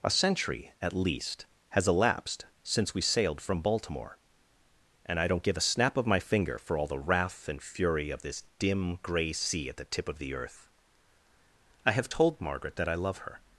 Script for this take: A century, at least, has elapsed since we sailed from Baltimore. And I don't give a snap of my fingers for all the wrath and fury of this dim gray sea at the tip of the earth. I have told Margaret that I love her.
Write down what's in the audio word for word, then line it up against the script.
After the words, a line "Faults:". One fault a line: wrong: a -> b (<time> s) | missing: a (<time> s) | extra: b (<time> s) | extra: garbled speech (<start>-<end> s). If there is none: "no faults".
A century, at least, has elapsed since we sailed from Baltimore. And I don't give a snap of my finger for all the wrath and fury of this dim gray sea at the tip of the earth. I have told Margaret that I love her.
Faults:
wrong: fingers -> finger (6.2 s)